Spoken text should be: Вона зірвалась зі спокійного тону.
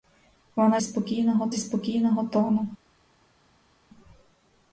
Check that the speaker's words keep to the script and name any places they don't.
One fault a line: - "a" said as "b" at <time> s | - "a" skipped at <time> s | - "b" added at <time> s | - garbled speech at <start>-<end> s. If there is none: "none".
- "зірвалась" said as "спокійного" at 0.8 s